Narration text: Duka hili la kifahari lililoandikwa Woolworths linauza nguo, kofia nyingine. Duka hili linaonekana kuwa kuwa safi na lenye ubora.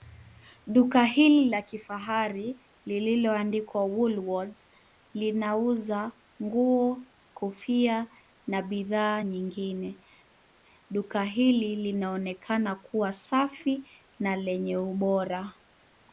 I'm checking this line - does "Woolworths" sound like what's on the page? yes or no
yes